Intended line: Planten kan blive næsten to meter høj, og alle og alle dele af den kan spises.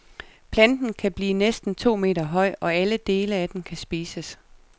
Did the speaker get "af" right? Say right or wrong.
right